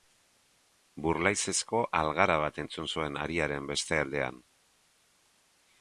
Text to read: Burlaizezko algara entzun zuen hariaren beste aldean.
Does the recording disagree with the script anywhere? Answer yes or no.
yes